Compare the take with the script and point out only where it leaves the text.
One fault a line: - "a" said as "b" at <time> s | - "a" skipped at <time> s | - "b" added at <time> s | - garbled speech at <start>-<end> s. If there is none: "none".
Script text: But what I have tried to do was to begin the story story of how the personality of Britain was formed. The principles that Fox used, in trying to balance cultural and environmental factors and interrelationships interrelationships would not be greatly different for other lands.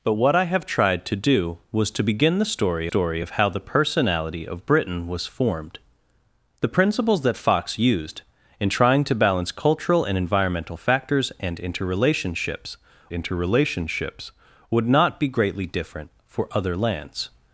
none